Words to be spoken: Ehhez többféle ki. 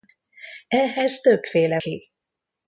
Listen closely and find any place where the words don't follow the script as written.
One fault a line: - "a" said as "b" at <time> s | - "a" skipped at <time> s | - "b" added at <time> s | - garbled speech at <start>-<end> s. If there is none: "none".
none